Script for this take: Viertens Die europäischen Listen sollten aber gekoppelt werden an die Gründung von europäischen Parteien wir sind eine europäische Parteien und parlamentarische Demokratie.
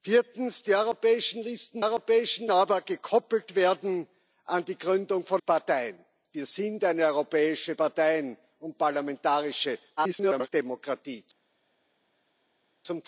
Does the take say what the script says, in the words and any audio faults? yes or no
no